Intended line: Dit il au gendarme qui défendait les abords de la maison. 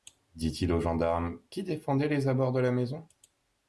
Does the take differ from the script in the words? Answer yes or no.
no